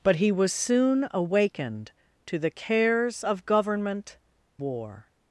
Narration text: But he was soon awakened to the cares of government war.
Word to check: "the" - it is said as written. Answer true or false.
true